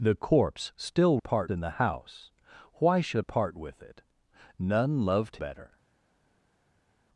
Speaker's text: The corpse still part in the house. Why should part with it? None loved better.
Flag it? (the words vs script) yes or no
no